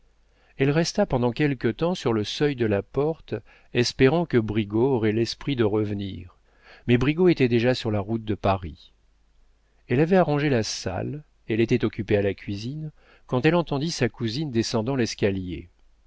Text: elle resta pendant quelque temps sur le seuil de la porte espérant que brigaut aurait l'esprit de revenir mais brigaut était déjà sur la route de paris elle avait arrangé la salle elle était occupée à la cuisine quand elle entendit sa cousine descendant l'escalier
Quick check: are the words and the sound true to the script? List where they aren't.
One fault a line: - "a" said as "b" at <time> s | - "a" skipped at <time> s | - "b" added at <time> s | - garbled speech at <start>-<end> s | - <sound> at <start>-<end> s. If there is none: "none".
none